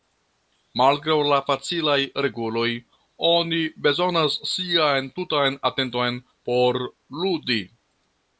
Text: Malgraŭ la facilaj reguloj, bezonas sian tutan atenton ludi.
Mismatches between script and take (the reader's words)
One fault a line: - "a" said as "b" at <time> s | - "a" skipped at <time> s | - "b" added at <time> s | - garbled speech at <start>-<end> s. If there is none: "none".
- "oni" added at 3.3 s
- "por" added at 6.5 s